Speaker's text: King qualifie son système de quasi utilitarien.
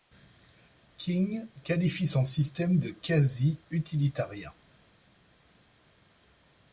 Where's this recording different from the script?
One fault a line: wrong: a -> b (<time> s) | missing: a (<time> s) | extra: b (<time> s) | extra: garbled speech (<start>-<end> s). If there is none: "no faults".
no faults